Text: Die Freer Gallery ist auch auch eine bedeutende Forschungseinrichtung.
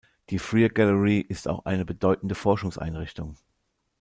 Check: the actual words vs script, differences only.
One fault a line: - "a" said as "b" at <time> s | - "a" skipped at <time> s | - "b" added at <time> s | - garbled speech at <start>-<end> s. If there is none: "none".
- "auch" skipped at 1.6 s